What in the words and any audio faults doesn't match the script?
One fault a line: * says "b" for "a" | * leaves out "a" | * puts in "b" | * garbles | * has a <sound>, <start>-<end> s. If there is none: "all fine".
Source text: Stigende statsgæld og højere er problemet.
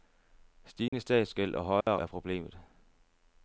* has a dropout, 0.9-0.9 s
* has a dropout, 1.8-1.9 s